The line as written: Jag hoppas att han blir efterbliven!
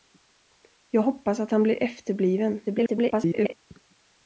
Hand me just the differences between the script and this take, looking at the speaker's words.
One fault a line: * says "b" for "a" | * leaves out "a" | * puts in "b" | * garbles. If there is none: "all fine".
* garbles